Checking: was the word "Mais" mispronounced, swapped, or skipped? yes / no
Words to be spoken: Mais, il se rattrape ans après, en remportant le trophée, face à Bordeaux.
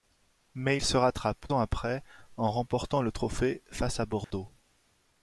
no